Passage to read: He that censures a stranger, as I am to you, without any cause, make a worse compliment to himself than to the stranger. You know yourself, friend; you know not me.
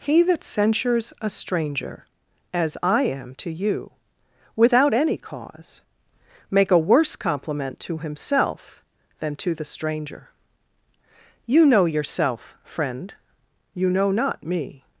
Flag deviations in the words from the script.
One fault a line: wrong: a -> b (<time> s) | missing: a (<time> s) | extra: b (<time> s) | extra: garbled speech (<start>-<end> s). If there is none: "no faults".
no faults